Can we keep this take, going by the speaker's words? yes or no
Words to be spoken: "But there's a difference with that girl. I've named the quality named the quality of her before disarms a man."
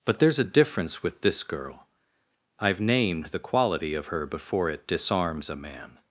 no